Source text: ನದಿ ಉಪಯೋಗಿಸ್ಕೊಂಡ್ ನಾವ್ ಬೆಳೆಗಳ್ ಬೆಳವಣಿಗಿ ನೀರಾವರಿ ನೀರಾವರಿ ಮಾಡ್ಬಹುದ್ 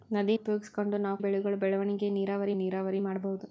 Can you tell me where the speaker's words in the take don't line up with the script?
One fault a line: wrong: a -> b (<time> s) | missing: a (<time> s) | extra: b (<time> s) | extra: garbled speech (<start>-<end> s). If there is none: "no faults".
no faults